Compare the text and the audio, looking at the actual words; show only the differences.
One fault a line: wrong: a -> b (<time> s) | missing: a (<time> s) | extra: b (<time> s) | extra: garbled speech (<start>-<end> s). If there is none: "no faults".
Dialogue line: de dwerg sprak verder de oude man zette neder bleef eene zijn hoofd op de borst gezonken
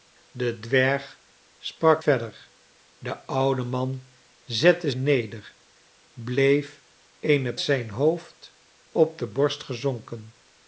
no faults